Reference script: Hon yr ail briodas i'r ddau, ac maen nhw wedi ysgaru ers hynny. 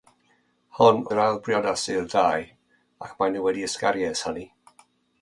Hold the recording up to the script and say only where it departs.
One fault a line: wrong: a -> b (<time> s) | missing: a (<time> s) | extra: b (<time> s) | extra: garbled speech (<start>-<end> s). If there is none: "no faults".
no faults